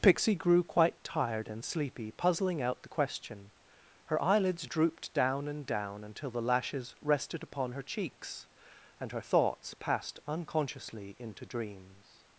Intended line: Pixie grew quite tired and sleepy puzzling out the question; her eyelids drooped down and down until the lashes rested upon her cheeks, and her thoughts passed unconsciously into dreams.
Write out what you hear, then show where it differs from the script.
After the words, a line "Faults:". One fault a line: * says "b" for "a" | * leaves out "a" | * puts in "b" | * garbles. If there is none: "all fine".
Pixie grew quite tired and sleepy puzzling out the question; her eyelids drooped down and down until the lashes rested upon her cheeks, and her thoughts passed unconsciously into dreams.
Faults:
all fine